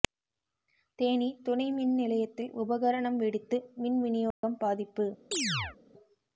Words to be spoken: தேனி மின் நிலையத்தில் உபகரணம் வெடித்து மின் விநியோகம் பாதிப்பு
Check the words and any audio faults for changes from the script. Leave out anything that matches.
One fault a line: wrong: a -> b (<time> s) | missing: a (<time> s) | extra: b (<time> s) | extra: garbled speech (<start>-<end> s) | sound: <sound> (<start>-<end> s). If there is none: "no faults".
extra: துணை (1.4 s)
sound: dropout (4.3-4.4 s)
sound: chirp (5.3-5.8 s)